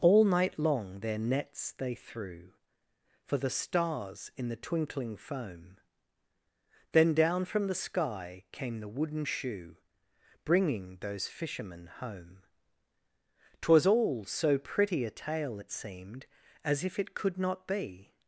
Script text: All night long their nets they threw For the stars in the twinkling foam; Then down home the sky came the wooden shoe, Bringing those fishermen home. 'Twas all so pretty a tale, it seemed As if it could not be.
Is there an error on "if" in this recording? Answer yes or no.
no